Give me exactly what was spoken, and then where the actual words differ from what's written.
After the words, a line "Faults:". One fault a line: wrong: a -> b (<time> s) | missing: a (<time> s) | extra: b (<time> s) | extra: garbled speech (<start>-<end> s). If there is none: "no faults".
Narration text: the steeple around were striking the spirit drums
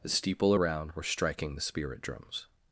the steeple around were striking the spirit drums
Faults:
no faults